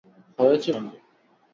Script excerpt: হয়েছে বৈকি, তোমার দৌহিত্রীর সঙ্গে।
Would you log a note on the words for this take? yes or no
yes